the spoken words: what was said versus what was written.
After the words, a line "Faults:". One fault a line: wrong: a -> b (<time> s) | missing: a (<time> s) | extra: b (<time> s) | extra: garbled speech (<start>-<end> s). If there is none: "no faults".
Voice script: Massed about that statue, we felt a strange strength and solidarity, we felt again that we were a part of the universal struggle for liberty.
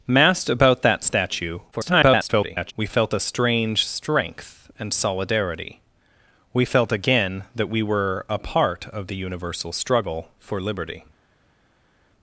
Massed about that statue, [garbled] we felt a strange strength and solidarity, we felt again that we were a part of the universal struggle for liberty.
Faults:
extra: garbled speech (1.7-2.7 s)